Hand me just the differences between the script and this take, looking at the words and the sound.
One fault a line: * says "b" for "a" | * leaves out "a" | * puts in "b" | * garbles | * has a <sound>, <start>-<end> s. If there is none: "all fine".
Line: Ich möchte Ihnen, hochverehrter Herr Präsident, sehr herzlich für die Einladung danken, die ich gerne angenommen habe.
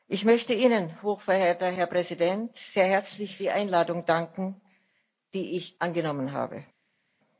* leaves out "für"
* leaves out "gerne"